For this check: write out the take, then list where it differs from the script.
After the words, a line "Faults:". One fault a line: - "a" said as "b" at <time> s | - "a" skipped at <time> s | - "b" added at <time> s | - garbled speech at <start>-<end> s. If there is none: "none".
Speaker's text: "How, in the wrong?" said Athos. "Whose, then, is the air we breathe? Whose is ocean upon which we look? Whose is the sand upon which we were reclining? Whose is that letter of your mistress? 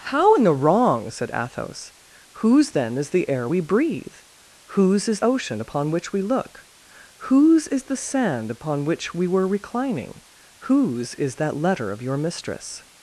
"How, in the wrong?" said Athos. "Whose, then, is the air we breathe? Whose is ocean upon which we look? Whose is the sand upon which we were reclining? Whose is that letter of your mistress?
Faults:
none